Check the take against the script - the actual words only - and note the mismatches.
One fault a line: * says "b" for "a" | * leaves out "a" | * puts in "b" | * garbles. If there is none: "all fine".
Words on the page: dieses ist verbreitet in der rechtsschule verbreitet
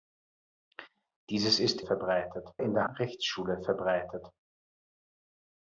all fine